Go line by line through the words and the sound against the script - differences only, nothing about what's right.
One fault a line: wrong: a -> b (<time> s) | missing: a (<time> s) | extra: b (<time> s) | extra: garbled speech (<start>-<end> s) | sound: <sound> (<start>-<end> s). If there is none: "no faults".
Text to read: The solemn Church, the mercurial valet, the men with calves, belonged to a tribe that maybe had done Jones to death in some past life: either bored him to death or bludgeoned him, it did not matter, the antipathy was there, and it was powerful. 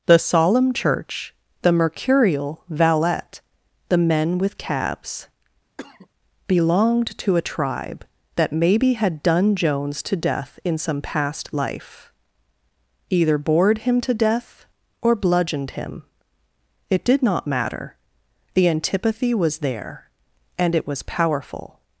wrong: calves -> cabs (4.6 s)
sound: cough (5.8-6.1 s)